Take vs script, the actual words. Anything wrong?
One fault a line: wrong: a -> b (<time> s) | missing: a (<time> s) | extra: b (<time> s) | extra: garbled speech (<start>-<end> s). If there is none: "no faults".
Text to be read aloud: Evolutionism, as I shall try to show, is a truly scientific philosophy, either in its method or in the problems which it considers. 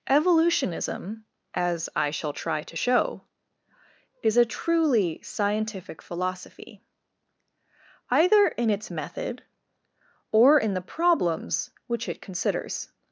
no faults